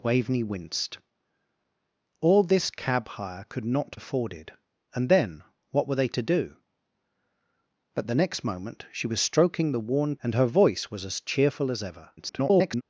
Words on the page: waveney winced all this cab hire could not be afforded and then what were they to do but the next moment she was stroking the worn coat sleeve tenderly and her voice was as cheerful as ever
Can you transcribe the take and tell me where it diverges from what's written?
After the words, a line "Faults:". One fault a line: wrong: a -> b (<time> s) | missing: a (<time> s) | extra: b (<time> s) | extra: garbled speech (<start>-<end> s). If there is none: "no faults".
waveney winced all this cab hire could not afforded and then what were they to do but the next moment she was stroking the worn and her voice was as cheerful as ever [garbled]
Faults:
missing: be (4.0 s)
missing: coat sleeve tenderly (10.2 s)
extra: garbled speech (12.2-12.8 s)